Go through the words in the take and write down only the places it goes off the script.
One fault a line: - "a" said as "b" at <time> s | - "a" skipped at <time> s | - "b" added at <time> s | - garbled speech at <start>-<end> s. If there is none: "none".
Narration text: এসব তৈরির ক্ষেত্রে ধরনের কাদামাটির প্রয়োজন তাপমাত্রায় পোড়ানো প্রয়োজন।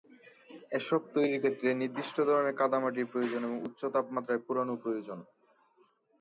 - "নির্দিষ্ট" added at 1.8 s
- "এবং উচ্চ" added at 3.4 s